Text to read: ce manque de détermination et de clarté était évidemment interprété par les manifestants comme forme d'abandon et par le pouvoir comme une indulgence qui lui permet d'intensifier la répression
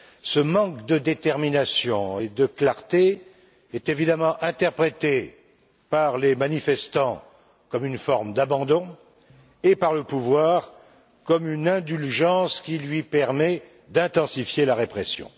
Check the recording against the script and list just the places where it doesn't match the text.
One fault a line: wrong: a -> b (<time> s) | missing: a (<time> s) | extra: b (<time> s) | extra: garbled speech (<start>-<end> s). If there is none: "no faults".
wrong: était -> est (3.7 s)
extra: une (7.8 s)